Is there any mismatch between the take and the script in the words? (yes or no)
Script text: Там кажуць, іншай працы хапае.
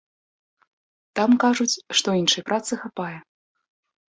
yes